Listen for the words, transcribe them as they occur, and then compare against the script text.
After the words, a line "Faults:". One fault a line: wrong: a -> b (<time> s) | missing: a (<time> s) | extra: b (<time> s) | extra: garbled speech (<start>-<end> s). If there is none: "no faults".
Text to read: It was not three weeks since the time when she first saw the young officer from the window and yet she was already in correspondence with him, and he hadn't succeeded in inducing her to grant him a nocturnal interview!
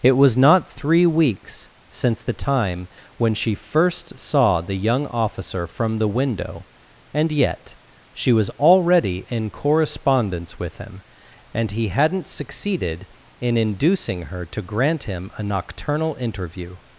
It was not three weeks since the time when she first saw the young officer from the window and yet she was already in correspondence with him, and he hadn't succeeded in inducing her to grant him a nocturnal interview!
Faults:
no faults